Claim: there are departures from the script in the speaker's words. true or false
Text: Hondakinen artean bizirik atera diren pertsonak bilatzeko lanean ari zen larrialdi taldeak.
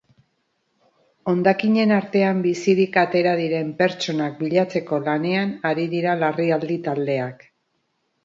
true